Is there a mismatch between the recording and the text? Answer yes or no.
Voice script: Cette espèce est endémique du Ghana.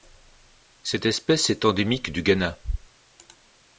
no